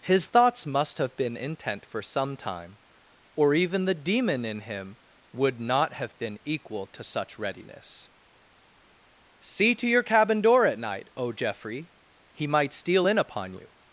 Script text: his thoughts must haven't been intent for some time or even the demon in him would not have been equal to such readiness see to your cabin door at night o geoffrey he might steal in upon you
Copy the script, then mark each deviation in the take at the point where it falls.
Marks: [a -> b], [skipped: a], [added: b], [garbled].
his thoughts must [haven't -> have] been intent for some time or even the demon in him would not have been equal to such readiness see to your cabin door at night o geoffrey he might steal in upon you